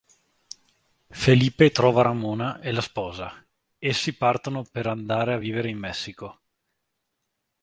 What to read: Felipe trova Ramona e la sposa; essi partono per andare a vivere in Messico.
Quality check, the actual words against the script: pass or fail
pass